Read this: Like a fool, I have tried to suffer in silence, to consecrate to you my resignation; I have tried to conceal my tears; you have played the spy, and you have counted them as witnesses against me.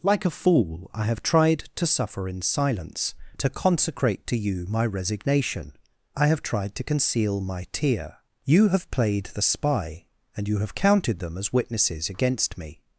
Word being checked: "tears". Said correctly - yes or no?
no